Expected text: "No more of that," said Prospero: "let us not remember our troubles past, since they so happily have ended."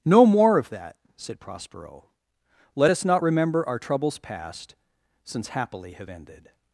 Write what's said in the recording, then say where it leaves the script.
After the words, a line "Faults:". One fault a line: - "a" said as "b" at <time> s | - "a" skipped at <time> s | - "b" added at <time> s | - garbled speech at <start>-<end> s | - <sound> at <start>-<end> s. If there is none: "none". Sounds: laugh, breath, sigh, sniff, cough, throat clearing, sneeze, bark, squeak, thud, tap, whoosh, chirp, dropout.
"No more of that," said Prospero: "let us not remember our troubles past, since happily have ended."
Faults:
- "they so" skipped at 5.5 s